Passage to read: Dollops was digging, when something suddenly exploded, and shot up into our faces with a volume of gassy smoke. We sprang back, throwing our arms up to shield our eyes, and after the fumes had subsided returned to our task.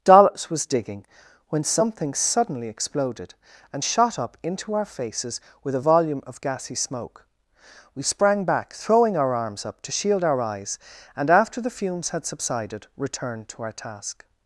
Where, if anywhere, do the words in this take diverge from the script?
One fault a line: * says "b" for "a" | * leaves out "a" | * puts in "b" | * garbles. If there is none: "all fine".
all fine